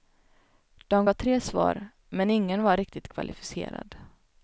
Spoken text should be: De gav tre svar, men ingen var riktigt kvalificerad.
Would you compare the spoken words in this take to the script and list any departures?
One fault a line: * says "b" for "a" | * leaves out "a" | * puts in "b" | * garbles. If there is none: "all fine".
all fine